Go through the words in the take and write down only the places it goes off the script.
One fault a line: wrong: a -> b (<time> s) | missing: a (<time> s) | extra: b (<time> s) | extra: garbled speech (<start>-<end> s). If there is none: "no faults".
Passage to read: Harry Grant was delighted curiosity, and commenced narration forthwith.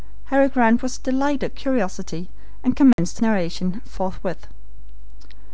no faults